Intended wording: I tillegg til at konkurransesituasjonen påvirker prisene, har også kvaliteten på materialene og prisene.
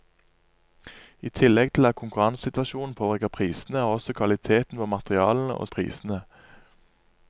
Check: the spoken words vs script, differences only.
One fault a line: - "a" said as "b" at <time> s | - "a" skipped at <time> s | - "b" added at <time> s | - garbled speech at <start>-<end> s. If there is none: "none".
none